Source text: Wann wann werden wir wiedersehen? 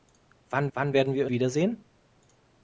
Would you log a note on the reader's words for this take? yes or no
no